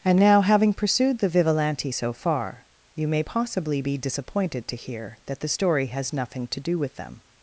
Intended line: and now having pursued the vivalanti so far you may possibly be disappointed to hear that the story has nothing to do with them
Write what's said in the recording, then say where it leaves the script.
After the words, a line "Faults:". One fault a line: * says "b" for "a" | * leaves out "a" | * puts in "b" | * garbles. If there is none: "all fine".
and now having pursued the vivalanti so far you may possibly be disappointed to hear that the story has nothing to do with them
Faults:
all fine